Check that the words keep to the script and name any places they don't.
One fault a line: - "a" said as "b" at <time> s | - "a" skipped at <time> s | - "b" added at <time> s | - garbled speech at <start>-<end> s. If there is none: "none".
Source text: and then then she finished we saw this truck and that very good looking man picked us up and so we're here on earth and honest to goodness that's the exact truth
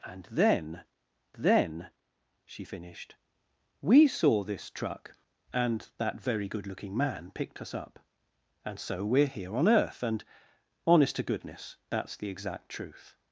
none